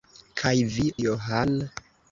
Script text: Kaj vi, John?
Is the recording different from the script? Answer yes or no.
no